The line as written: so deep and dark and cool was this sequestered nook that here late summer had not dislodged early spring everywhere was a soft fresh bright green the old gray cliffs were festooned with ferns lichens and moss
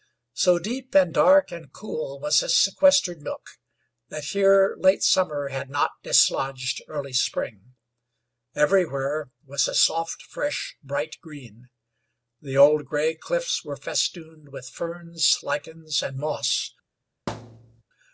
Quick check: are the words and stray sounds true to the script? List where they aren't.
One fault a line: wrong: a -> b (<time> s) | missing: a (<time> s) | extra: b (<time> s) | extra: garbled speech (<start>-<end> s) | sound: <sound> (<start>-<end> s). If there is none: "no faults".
sound: thud (17.3-17.8 s)